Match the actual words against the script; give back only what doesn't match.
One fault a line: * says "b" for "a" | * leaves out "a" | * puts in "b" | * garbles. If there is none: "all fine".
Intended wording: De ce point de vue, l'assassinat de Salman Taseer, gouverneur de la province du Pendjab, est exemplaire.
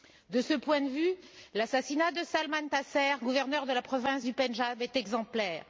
all fine